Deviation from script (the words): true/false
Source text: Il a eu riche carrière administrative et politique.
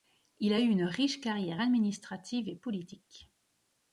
true